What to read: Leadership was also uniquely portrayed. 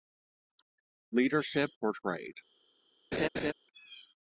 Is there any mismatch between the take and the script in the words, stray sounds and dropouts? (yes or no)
yes